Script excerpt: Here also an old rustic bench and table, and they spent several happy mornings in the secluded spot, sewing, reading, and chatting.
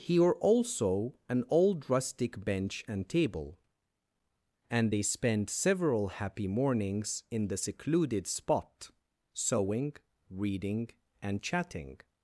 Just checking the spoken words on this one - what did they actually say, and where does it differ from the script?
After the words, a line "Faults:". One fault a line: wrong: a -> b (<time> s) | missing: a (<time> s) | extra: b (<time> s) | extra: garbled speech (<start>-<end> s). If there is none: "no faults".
Here also an old rustic bench and table, and they spent several happy mornings in the secluded spot, sewing, reading, and chatting.
Faults:
no faults